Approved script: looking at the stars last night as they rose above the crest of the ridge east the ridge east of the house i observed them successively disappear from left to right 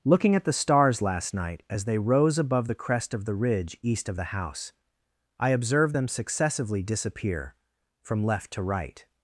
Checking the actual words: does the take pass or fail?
fail